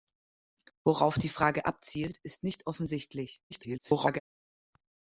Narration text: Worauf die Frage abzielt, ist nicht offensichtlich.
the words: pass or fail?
fail